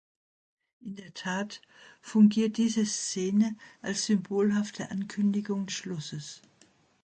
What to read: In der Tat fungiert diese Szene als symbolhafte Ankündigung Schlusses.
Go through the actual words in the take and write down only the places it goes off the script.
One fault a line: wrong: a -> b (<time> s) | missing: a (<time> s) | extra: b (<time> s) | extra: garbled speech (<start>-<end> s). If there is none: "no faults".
no faults